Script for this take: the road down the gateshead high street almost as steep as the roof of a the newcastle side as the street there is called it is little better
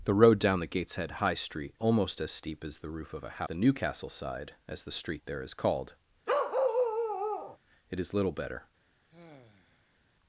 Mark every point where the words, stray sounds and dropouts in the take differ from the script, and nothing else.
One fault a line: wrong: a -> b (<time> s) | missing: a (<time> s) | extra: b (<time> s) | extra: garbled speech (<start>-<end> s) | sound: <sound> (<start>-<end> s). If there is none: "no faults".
sound: bark (6.3-7.6 s)
sound: sigh (9.1-10.0 s)